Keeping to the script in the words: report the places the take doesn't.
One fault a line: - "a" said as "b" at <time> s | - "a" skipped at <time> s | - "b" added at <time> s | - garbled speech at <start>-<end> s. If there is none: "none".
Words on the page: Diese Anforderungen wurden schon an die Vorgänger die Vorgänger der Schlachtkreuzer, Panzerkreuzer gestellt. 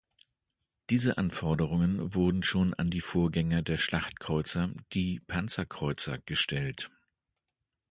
- "die Vorgänger" skipped at 3.6 s
- "die" added at 4.9 s